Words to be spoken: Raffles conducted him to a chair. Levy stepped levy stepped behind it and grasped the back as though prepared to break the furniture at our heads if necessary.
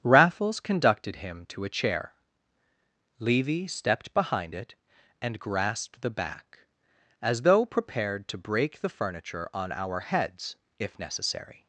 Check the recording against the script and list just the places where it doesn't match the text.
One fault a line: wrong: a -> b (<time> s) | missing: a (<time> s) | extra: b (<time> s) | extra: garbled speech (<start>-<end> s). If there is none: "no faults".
missing: levy stepped (4.2 s)
wrong: at -> on (9.5 s)